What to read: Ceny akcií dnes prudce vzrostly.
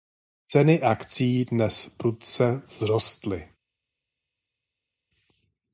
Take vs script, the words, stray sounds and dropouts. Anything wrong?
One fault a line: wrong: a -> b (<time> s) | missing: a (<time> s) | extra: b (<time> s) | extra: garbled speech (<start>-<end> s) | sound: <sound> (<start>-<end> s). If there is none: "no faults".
no faults